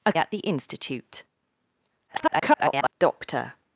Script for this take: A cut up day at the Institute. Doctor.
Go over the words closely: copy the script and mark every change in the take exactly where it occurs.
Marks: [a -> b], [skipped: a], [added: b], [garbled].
A [skipped: cut up day] at the Institute. [garbled] Doctor.